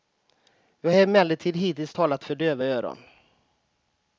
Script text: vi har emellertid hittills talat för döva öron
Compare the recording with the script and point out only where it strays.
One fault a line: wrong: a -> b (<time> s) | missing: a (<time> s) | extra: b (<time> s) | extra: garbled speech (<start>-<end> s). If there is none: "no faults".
no faults